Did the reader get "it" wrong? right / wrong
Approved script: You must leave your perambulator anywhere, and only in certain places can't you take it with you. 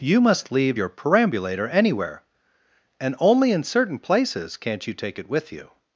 right